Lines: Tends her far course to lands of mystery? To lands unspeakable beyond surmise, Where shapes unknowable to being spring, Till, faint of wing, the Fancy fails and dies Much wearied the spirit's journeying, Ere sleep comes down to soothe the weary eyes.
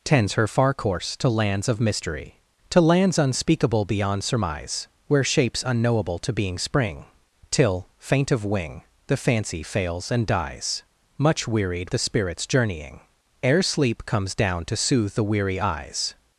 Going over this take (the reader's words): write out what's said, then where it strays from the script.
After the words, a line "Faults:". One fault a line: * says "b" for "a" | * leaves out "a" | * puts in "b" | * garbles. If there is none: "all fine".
Tends her far course to lands of mystery? To lands unspeakable beyond surmise, Where shapes unknowable to being spring, Till, faint of wing, the Fancy fails and dies Much wearied the spirit's journeying, Ere sleep comes down to soothe the weary eyes.
Faults:
all fine